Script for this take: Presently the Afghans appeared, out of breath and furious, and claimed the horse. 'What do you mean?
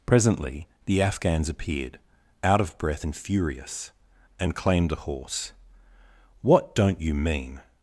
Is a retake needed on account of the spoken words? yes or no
yes